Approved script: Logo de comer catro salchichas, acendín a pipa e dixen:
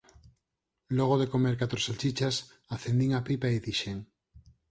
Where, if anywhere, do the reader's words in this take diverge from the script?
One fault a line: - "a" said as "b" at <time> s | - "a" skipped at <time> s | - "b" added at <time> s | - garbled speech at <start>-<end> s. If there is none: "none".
none